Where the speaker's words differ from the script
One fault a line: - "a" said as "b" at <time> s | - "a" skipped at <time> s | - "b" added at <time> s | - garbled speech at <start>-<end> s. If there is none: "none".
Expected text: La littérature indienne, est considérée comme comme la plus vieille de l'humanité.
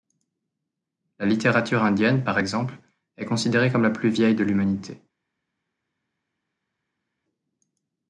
- "par exemple" added at 2.2 s
- "comme" skipped at 3.8 s